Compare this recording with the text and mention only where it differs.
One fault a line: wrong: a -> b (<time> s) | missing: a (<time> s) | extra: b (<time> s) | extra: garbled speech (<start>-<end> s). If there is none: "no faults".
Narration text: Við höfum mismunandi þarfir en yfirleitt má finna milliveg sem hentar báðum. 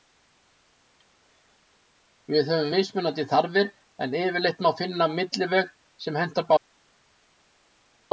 no faults